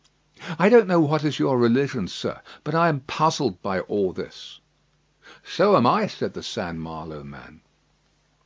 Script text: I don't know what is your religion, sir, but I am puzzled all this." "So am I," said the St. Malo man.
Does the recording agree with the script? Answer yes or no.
no